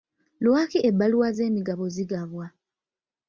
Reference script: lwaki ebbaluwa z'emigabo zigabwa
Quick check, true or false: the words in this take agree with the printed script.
true